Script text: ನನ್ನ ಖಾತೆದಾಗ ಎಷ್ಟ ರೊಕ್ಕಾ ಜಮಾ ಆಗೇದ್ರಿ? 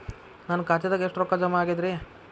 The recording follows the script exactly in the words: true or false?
true